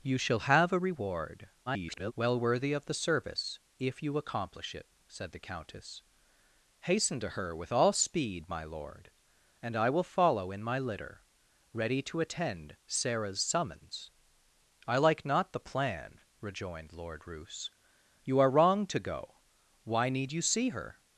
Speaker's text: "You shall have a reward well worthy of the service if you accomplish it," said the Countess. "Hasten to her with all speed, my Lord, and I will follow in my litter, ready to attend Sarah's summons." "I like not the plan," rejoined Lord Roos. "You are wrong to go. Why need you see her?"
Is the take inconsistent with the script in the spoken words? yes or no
yes